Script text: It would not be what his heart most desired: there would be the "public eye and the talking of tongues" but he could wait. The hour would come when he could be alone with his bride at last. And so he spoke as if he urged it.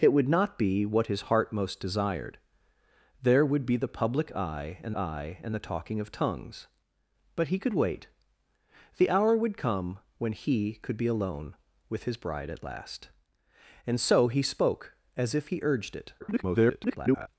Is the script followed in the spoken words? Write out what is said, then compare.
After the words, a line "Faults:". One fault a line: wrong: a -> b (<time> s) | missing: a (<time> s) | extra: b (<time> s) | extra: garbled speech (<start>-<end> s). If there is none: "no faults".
It would not be what his heart most desired: there would be the "public eye and eye and the talking of tongues" but he could wait. The hour would come when he could be alone with his bride at last. And so he spoke as if he urged it. [garbled]
Faults:
extra: eye and (5.0 s)
extra: garbled speech (16.2-17.3 s)